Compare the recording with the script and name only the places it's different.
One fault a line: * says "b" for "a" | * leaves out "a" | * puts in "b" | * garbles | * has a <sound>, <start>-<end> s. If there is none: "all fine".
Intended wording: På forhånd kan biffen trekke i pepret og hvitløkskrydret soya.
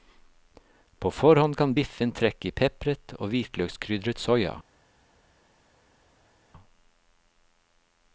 all fine